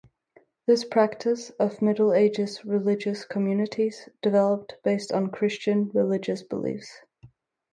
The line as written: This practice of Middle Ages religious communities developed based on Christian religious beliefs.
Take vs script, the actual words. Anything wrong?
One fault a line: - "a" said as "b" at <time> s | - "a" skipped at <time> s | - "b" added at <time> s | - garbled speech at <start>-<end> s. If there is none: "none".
none